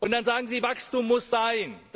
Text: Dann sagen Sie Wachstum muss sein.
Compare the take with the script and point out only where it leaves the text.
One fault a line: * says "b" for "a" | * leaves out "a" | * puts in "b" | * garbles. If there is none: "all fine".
all fine